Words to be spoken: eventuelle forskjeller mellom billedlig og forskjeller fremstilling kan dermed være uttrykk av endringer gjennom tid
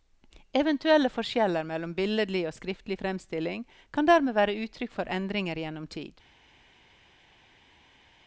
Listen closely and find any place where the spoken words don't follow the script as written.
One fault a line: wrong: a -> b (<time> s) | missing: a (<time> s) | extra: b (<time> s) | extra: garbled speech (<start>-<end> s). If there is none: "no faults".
wrong: forskjeller -> skriftlig (2.6 s)
wrong: av -> for (4.9 s)